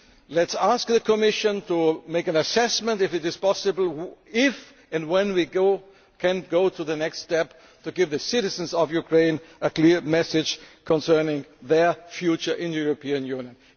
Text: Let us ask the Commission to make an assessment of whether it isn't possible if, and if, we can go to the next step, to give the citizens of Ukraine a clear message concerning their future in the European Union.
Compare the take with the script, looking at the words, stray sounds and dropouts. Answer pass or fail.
fail